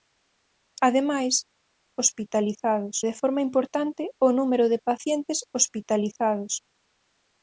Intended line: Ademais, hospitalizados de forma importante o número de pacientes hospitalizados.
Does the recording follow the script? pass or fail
pass